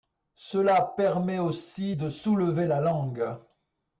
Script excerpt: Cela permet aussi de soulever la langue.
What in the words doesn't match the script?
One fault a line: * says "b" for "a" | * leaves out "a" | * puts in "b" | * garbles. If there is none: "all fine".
all fine